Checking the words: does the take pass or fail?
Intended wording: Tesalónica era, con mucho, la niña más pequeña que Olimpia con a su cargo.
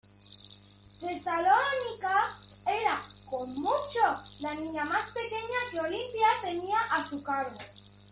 fail